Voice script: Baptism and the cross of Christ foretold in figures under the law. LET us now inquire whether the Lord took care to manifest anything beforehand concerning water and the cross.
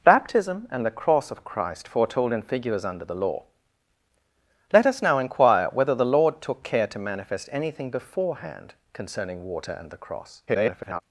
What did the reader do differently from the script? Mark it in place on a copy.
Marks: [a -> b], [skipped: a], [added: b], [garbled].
Baptism and the cross of Christ foretold in figures under the law. LET us now inquire whether the Lord took care to manifest anything beforehand concerning water and the cross. [garbled]